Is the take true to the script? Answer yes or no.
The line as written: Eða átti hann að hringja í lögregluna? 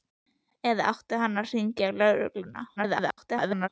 no